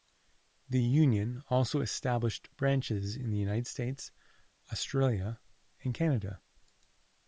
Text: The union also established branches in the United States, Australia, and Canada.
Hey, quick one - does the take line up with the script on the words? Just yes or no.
yes